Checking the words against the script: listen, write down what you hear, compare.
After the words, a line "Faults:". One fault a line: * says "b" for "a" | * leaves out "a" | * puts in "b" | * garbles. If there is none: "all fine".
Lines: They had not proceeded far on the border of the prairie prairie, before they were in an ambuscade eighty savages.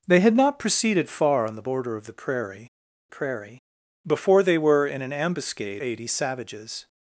They had not proceeded far on the border of the prairie prairie, before they were in an ambuscade eighty savages.
Faults:
all fine